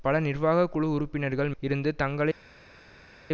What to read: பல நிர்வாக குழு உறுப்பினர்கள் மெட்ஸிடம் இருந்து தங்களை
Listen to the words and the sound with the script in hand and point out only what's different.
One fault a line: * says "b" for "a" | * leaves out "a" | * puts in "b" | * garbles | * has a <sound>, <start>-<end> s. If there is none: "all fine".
* leaves out "மெட்ஸிடம்"